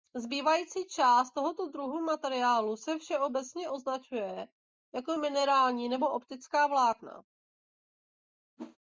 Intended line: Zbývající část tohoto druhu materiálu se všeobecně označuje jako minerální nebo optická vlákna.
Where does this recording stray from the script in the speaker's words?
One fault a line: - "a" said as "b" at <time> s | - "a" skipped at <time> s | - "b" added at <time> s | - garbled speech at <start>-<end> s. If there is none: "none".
none